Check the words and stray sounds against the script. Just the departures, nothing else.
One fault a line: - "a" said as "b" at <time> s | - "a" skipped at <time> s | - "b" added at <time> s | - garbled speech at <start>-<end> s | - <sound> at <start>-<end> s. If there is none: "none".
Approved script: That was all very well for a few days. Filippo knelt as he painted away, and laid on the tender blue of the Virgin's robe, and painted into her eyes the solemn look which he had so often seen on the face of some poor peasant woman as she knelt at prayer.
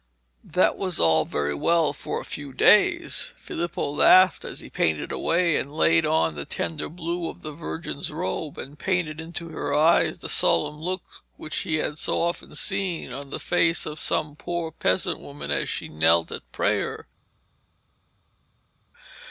- "knelt" said as "laughed" at 3.9 s